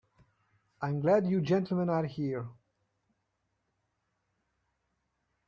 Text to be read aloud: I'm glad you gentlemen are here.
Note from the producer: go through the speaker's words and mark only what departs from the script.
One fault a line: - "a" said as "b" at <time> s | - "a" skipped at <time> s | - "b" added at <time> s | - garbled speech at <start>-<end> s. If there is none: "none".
none